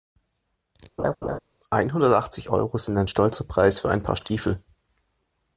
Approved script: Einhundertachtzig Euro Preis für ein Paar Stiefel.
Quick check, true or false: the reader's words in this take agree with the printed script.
false